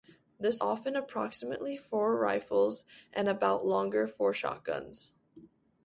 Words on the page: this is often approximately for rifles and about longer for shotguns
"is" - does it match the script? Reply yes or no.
no